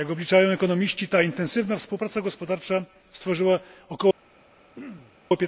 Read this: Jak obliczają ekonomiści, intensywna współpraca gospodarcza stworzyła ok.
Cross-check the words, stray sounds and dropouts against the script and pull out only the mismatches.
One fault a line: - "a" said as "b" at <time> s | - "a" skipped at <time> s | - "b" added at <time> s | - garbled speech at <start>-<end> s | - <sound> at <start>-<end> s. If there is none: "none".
- "ta" added at 1.1 s
- throat clearing at 4.7-5.2 s